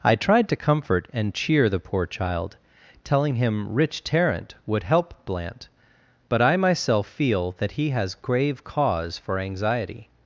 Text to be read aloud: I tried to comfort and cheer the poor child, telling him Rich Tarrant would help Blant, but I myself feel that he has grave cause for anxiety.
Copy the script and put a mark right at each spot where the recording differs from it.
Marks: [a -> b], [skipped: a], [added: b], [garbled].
I tried to comfort and cheer the poor child, telling him Rich Tarrant would help Blant, but I myself feel that he has grave cause for anxiety.